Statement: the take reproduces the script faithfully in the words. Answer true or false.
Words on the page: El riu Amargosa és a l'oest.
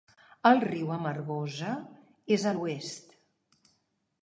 true